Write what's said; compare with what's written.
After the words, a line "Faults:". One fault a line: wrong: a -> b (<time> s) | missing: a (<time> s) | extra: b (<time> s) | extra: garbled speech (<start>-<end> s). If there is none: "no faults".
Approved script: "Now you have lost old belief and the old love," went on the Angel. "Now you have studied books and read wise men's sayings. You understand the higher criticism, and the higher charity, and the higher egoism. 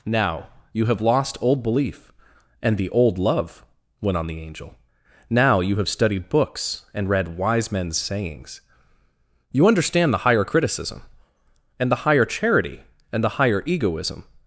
"Now you have lost old belief and the old love," went on the Angel. "Now you have studied books and read wise men's sayings. You understand the higher criticism, and the higher charity, and the higher egoism.
Faults:
no faults